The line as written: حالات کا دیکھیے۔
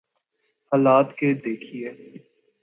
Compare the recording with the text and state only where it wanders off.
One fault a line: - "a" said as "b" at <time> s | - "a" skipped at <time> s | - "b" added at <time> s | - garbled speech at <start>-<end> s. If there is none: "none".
none